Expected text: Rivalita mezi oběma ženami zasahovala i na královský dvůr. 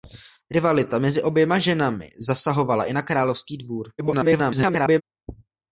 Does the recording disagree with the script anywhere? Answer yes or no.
yes